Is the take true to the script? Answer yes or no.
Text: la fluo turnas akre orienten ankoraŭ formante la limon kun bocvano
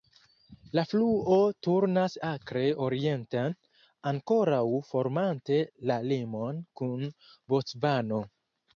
yes